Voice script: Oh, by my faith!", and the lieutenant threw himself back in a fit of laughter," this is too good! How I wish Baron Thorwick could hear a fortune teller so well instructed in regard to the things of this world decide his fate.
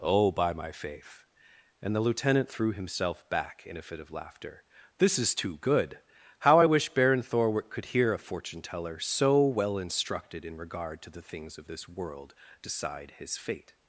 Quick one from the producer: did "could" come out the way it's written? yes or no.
yes